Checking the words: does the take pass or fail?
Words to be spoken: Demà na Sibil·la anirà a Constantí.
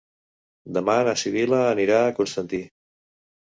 pass